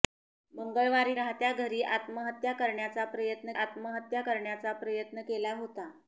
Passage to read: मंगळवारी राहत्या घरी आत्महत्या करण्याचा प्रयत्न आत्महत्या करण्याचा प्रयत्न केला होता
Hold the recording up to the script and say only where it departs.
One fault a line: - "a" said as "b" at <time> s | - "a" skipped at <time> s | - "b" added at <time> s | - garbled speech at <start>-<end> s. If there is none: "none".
none